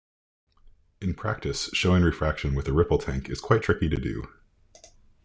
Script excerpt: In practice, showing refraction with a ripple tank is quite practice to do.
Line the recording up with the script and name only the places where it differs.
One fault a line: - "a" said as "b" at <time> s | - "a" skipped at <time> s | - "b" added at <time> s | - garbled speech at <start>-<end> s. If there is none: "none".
- "practice" said as "tricky" at 3.6 s